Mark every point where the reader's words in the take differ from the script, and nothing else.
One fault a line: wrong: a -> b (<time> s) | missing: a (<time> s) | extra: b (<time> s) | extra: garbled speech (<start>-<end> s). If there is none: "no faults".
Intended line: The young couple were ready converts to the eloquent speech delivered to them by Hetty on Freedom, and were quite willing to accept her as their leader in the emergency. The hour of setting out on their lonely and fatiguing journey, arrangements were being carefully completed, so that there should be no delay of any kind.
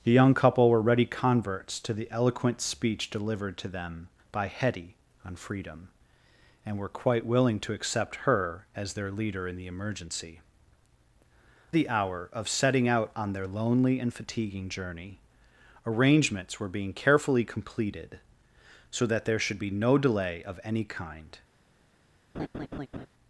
no faults